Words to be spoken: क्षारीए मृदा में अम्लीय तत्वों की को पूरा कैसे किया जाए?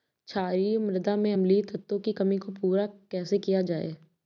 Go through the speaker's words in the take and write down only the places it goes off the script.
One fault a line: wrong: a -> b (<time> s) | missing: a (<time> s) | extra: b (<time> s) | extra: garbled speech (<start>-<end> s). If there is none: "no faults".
extra: कमी (2.1 s)